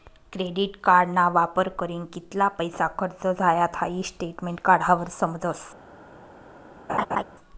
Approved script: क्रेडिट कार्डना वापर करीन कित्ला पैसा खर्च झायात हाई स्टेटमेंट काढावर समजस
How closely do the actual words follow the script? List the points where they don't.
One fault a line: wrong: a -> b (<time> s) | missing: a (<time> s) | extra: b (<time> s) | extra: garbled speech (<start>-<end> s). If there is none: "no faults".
no faults